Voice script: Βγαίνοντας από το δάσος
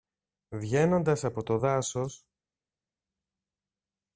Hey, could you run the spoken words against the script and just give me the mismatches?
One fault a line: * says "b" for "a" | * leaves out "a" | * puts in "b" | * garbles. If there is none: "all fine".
all fine